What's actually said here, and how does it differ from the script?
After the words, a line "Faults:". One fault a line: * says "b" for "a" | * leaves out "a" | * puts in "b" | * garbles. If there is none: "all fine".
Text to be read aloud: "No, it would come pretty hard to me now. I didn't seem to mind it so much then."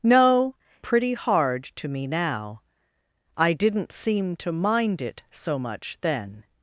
"No, pretty hard to me now. I didn't seem to mind it so much then."
Faults:
* leaves out "it would come"